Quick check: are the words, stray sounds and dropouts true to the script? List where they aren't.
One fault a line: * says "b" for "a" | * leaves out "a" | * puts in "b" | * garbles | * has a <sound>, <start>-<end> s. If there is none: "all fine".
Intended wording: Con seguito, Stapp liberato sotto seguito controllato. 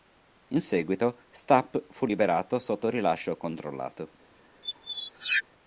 * says "In" for "Con"
* puts in "fu"
* says "rilascio" for "seguito"
* has a squeak, 4.6-5.4 s